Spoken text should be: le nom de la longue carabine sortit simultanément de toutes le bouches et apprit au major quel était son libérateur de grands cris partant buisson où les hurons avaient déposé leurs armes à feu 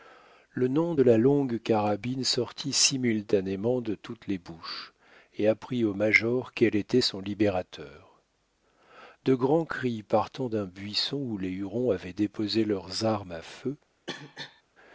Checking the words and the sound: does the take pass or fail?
fail